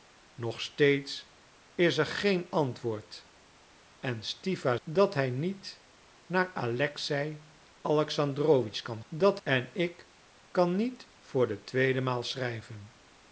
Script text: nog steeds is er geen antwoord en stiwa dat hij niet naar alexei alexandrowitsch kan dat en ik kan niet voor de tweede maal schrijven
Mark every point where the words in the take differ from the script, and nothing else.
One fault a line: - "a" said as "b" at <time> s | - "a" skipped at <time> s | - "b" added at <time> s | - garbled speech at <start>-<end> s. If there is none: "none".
none